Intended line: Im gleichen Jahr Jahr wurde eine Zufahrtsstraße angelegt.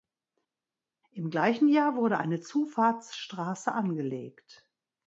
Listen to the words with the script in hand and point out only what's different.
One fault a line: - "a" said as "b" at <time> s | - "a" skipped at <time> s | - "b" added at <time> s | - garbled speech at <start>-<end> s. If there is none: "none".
- "Jahr" skipped at 1.9 s